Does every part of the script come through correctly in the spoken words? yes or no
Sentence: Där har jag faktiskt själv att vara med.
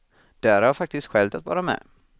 yes